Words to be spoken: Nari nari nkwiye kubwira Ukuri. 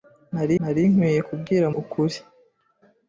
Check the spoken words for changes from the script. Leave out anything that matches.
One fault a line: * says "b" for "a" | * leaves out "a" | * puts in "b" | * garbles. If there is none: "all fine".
all fine